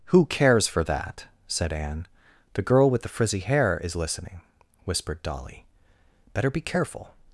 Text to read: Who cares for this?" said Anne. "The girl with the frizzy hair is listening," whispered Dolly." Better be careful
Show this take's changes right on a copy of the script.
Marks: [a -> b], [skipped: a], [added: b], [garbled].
Who cares for [this?" -> that] said Anne. "The girl with the frizzy hair is listening," whispered Dolly." Better be careful